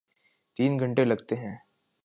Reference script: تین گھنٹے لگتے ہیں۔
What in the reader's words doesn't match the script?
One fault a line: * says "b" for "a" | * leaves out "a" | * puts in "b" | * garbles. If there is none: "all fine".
all fine